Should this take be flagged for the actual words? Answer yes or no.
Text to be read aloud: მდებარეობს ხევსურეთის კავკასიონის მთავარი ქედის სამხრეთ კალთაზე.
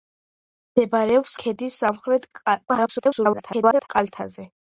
yes